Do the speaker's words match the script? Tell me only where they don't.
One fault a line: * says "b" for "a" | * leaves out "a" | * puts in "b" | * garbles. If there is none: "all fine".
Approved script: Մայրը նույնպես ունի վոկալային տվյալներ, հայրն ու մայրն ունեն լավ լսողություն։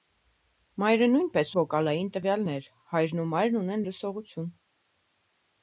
* leaves out "ունի"
* leaves out "լավ"